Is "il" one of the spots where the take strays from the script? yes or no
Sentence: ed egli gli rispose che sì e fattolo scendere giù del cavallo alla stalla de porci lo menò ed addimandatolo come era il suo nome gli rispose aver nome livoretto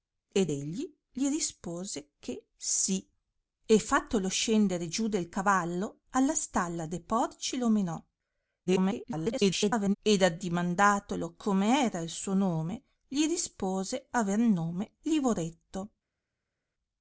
no